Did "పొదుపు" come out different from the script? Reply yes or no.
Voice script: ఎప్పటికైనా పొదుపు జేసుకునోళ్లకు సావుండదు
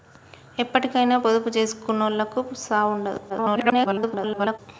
no